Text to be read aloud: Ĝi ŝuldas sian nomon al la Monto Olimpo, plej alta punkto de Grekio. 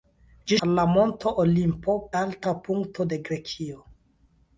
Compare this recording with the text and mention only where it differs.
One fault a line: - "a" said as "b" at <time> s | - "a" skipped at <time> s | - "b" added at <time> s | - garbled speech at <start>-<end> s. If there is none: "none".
- "ŝuldas sian nomon" skipped at 0.6 s
- "plej" skipped at 2.0 s